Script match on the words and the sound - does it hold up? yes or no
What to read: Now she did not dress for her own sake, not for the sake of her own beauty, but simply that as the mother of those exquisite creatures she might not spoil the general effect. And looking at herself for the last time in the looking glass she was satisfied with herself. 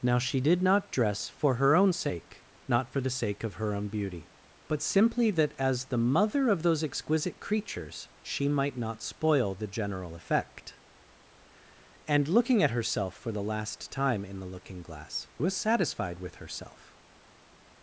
no